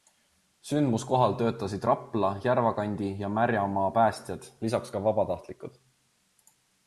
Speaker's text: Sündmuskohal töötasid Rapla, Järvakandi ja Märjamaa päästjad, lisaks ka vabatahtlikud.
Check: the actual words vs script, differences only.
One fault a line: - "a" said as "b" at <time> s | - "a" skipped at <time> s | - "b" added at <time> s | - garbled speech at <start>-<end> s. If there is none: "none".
none